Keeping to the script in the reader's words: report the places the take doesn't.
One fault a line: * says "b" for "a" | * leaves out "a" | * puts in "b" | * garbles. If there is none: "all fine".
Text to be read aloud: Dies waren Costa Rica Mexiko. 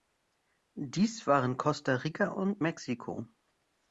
* puts in "und"